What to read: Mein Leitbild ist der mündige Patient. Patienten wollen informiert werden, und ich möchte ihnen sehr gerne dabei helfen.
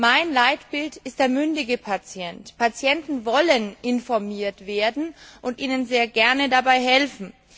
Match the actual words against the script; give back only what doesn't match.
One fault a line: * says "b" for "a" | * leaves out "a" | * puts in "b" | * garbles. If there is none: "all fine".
* leaves out "ich möchte"